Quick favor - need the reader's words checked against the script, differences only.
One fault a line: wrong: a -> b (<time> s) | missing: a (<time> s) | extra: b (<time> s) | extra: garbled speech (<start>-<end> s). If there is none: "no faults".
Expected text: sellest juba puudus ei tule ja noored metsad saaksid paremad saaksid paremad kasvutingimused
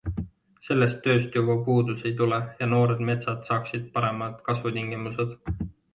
extra: tööst (1.1 s)
missing: saaksid paremad (4.4 s)